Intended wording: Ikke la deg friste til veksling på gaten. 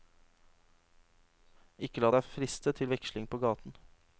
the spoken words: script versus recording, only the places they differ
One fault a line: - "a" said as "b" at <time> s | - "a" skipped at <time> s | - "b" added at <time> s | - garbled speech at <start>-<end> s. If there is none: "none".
none